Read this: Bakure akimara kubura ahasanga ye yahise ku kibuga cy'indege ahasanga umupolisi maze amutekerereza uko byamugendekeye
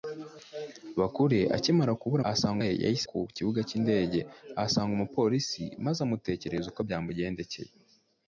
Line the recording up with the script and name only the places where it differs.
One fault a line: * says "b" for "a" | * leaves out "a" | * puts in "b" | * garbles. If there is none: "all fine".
all fine